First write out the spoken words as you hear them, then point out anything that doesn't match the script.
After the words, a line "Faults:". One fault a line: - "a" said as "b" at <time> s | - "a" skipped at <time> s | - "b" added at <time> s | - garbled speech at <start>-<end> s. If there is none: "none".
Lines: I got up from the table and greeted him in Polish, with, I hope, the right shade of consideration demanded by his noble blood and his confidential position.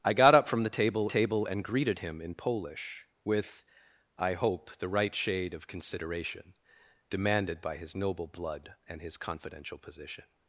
I got up from the table table and greeted him in Polish, with, I hope, the right shade of consideration demanded by his noble blood and his confidential position.
Faults:
- "table" added at 1.1 s